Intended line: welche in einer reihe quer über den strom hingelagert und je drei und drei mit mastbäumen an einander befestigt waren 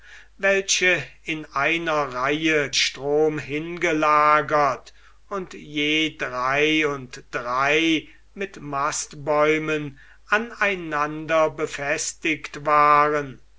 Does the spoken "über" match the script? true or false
false